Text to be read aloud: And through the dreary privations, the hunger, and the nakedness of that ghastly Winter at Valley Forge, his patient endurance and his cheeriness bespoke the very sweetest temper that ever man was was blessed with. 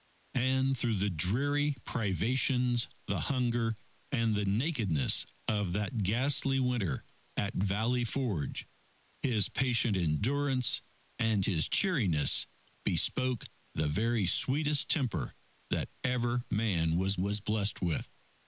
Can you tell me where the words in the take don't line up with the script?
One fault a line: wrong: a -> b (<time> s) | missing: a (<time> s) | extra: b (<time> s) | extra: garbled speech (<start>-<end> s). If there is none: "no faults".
no faults